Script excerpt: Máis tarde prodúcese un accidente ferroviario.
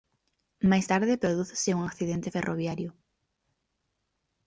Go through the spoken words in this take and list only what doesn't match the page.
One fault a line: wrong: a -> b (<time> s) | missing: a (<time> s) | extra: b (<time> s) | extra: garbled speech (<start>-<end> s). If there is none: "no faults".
no faults